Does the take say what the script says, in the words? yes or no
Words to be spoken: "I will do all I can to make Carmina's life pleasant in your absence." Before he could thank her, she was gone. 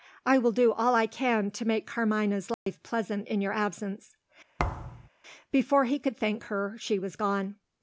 yes